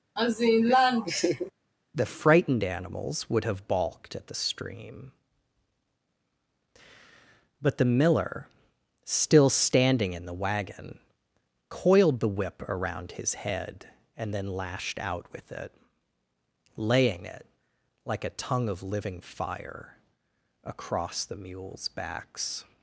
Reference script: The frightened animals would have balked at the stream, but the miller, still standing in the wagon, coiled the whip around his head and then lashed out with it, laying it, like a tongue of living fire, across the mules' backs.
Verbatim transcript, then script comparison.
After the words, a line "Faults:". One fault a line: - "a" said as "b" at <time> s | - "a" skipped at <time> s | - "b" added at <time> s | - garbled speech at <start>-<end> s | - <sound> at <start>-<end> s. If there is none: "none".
The frightened animals would have balked at the stream, but the miller, still standing in the wagon, coiled the whip around his head and then lashed out with it, laying it, like a tongue of living fire, across the mules' backs.
Faults:
- laugh at 0.2-1.5 s